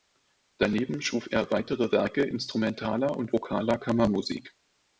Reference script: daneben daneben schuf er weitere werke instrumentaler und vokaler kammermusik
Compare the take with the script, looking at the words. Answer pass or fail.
fail